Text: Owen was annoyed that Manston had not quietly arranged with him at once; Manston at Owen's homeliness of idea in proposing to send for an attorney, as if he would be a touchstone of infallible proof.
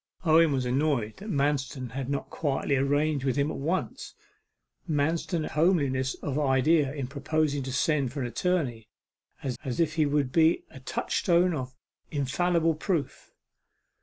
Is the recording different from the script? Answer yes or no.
yes